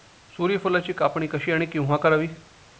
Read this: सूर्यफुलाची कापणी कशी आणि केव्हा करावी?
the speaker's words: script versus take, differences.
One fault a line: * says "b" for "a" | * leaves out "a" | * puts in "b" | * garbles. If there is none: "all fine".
all fine